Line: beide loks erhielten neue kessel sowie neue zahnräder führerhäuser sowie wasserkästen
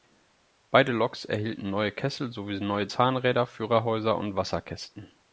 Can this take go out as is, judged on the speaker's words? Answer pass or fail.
fail